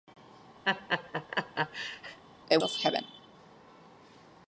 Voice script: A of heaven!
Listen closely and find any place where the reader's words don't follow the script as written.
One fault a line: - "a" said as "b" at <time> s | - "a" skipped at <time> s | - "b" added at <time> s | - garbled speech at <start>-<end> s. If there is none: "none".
none